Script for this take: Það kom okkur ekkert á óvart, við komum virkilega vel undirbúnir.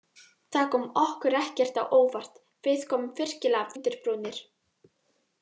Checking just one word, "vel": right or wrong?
wrong